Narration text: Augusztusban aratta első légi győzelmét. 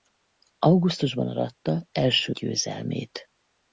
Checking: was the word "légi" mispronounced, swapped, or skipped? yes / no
yes